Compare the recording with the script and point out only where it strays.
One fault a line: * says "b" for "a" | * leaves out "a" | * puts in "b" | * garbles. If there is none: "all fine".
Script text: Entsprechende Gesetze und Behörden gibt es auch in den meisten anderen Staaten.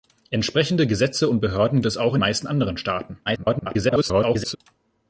* leaves out "gibt"
* leaves out "den"
* garbles